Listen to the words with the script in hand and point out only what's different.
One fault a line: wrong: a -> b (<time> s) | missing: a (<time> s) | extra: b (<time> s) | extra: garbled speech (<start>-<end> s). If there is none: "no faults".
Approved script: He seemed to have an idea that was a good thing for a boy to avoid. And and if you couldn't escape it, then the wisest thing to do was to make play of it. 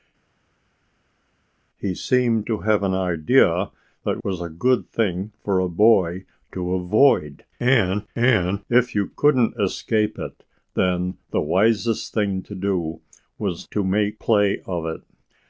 no faults